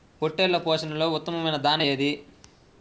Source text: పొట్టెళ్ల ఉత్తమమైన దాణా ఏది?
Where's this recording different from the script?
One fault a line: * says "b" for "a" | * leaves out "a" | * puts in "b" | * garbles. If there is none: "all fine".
* puts in "పోషణలో"